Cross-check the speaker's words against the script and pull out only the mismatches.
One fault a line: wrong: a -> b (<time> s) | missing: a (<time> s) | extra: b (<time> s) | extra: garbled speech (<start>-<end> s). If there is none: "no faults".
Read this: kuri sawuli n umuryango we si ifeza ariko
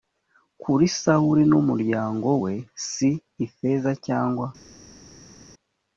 wrong: ariko -> cyangwa (4.1 s)